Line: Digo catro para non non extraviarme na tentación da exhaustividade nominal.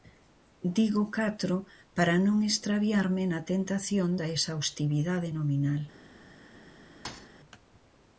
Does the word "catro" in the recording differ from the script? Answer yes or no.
no